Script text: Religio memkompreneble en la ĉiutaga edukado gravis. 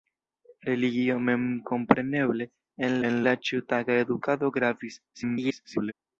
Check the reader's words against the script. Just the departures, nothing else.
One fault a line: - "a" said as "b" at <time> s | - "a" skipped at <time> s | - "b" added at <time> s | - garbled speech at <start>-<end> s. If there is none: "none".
- "en" added at 3.1 s
- garbled speech at 5.1-5.9 s